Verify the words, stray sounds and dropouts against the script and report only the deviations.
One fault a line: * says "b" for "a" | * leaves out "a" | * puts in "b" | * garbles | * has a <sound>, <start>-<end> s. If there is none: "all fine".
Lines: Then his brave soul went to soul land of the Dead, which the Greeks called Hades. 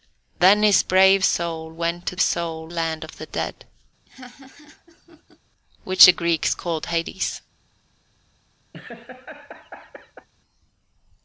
* has a laugh, 4.1-5.4 s
* has a laugh, 8.7-10.3 s